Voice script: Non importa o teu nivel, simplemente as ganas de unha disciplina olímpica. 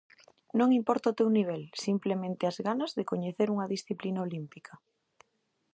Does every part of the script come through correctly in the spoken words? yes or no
no